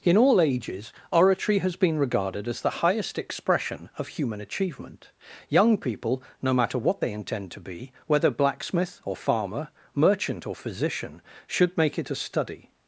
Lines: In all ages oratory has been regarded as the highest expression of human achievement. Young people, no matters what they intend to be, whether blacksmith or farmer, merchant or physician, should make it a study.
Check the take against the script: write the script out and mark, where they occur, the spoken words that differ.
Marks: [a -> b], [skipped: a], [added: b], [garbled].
In all ages oratory has been regarded as the highest expression of human achievement. Young people, no [matters -> matter] what they intend to be, whether blacksmith or farmer, merchant or physician, should make it a study.